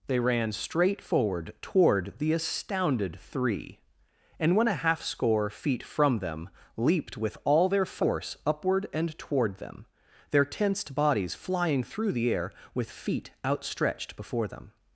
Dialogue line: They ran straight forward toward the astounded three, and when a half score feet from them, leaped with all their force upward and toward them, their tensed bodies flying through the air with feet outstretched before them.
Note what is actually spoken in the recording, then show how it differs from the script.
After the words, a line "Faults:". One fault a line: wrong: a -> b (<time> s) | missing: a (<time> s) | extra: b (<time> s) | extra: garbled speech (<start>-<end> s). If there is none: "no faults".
They ran straight forward toward the astounded three, and when a half score feet from them, leaped with all their force upward and toward them, their tensed bodies flying through the air with feet outstretched before them.
Faults:
no faults